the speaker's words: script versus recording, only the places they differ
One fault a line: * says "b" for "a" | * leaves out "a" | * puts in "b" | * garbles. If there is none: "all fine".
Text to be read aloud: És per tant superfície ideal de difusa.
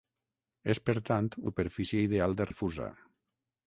all fine